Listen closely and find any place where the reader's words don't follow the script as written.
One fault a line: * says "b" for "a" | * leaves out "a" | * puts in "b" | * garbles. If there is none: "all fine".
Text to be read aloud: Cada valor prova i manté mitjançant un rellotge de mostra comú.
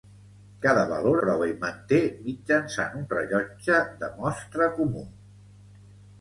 all fine